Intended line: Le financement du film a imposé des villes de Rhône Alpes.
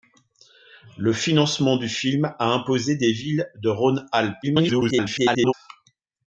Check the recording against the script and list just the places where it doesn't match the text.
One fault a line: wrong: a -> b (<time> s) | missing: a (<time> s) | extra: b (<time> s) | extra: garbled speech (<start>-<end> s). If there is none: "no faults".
extra: garbled speech (4.4-5.5 s)